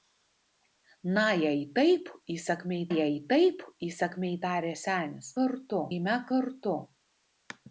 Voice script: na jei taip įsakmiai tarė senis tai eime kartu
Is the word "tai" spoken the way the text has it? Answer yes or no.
no